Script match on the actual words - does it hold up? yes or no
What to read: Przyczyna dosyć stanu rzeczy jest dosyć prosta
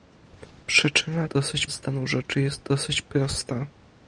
yes